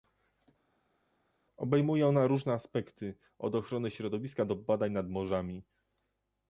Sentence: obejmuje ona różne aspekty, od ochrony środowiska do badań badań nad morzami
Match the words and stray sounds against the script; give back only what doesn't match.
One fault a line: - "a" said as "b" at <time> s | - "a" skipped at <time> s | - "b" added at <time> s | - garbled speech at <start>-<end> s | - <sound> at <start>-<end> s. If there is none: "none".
- "badań" skipped at 4.9 s